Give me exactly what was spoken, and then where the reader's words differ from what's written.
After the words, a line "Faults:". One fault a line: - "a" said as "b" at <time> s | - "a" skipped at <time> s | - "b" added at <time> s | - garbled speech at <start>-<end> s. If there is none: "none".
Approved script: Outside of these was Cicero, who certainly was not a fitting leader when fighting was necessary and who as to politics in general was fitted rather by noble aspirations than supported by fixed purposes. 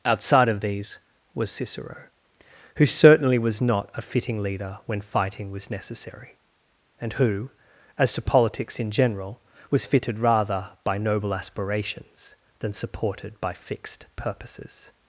Outside of these was Cicero, who certainly was not a fitting leader when fighting was necessary and who as to politics in general was fitted rather by noble aspirations than supported by fixed purposes.
Faults:
none